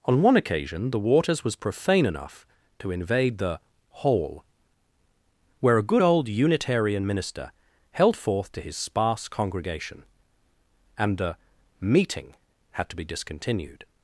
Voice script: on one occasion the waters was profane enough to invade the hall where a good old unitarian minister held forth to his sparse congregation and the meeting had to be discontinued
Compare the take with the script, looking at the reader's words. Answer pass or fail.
pass